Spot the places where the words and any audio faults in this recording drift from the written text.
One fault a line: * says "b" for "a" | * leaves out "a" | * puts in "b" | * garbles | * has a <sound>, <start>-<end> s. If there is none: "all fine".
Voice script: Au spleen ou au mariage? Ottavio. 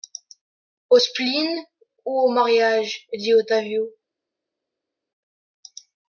* puts in "dit"